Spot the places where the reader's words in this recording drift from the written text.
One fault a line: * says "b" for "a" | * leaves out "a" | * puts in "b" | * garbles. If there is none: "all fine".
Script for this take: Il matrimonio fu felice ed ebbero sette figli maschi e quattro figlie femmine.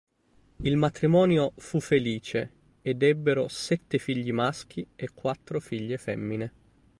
all fine